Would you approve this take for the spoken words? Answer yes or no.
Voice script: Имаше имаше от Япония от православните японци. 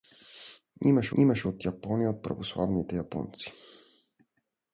yes